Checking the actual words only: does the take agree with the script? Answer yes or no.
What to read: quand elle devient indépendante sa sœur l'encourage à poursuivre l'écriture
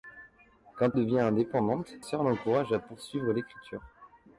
no